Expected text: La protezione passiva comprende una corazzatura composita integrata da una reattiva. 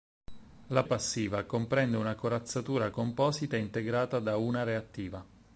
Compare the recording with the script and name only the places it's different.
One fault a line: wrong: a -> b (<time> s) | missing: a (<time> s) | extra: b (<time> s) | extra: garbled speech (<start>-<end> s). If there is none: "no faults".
missing: protezione (0.8 s)